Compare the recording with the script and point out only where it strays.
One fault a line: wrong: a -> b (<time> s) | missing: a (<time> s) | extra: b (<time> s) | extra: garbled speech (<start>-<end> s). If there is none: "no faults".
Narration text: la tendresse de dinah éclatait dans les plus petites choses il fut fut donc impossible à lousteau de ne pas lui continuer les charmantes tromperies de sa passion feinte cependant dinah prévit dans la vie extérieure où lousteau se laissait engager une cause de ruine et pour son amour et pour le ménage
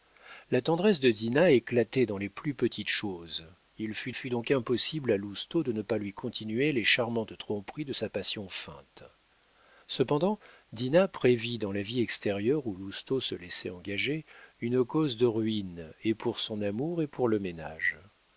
no faults